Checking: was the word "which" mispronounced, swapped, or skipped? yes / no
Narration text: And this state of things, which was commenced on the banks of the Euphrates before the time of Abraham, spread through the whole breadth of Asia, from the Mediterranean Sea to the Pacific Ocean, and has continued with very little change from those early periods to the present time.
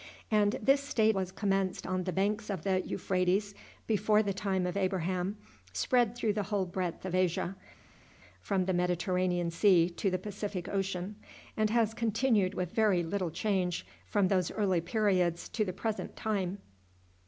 yes